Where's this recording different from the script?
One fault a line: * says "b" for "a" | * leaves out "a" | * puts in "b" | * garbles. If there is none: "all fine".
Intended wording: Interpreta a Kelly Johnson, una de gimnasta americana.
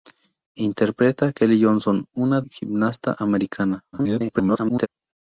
* leaves out "de"
* garbles